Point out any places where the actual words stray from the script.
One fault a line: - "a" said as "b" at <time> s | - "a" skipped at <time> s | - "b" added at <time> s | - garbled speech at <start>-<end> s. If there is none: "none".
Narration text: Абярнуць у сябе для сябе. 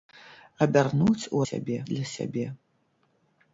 none